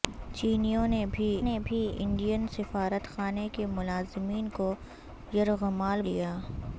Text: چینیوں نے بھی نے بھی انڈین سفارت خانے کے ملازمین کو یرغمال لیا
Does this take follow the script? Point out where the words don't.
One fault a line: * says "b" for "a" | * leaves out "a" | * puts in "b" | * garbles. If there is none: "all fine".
all fine